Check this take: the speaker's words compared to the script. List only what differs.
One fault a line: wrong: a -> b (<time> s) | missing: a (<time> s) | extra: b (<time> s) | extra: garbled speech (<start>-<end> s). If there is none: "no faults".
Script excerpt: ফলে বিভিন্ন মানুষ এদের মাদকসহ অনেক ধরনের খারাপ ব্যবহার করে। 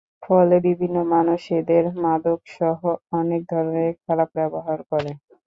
no faults